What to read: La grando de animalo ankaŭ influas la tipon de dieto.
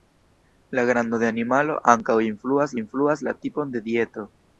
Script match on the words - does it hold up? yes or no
no